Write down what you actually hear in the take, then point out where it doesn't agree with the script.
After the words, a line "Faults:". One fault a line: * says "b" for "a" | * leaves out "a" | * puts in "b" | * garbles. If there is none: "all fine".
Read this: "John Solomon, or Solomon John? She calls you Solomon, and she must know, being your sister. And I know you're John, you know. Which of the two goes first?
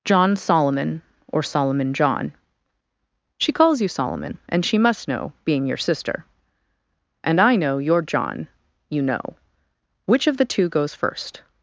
"John Solomon, or Solomon John? She calls you Solomon, and she must know, being your sister. And I know you're John, you know. Which of the two goes first?
Faults:
all fine